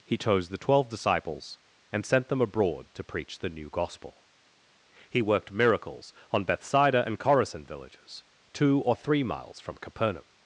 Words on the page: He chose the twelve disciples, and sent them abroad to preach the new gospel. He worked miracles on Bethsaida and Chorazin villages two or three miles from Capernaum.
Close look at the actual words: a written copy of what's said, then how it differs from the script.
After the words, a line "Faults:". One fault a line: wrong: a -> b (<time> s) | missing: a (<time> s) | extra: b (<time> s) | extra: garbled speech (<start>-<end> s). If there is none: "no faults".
He chose the twelve disciples, and sent them abroad to preach the new gospel. He worked miracles on Bethsaida and Chorazin villages two or three miles from Capernaum.
Faults:
no faults